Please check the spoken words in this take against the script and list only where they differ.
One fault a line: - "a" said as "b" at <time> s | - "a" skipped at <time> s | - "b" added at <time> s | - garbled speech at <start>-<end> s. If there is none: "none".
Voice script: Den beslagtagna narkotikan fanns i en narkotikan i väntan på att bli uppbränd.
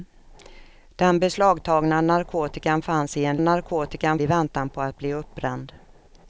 none